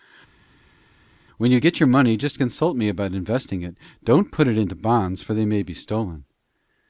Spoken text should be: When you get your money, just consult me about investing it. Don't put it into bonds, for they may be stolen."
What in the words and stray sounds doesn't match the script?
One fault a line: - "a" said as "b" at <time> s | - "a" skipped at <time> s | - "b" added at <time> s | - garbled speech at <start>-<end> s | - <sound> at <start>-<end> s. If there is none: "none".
none